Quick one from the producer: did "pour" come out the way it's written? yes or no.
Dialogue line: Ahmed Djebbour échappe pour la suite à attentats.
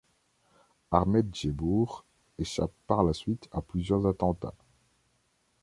no